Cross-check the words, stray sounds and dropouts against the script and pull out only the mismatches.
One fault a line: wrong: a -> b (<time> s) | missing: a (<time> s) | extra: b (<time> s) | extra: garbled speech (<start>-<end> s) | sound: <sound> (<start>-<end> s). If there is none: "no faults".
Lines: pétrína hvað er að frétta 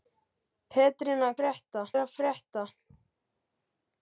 wrong: hvað -> frétta (1.4 s)